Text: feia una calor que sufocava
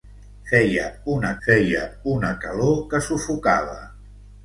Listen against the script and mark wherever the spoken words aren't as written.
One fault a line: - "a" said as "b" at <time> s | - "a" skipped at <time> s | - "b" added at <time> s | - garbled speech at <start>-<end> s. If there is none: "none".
- "feia una" added at 1.5 s